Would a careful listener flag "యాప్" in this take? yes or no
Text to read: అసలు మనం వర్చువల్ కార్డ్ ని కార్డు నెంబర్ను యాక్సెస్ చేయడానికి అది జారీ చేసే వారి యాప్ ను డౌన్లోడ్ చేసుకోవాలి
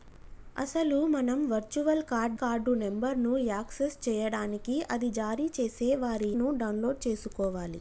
yes